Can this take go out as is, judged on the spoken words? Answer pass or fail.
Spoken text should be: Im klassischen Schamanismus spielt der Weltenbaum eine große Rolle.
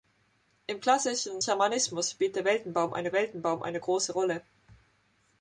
fail